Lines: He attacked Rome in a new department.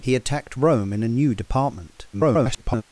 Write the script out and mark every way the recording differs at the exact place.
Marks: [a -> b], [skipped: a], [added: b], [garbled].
He attacked Rome in a new department. [garbled]